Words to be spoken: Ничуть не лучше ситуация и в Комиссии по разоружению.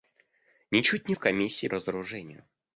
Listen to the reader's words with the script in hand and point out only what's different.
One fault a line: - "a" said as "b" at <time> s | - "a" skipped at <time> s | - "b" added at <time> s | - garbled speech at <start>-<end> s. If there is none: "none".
- "лучше ситуация и" skipped at 1.1 s
- "по" skipped at 1.7 s